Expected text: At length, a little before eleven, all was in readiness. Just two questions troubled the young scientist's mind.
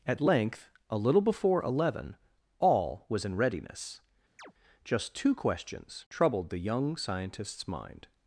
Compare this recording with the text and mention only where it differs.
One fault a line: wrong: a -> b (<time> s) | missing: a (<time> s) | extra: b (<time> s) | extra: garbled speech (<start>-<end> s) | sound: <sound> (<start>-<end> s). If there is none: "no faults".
sound: chirp (4.4-4.5 s)